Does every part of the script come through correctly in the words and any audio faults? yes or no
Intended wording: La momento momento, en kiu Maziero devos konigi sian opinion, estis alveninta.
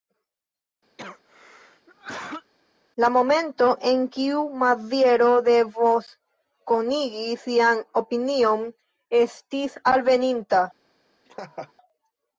no